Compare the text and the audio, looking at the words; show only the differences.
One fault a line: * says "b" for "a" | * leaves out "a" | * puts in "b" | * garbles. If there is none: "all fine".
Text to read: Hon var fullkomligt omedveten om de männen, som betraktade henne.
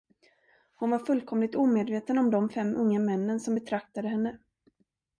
* puts in "fem unga"